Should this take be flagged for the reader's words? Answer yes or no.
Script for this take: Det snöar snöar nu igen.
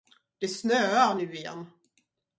yes